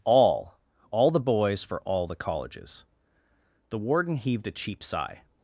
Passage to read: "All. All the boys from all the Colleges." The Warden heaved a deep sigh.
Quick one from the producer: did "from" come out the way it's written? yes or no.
no